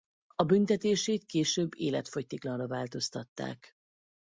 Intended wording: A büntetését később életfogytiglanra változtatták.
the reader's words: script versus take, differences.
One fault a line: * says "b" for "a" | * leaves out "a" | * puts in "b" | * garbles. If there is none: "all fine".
all fine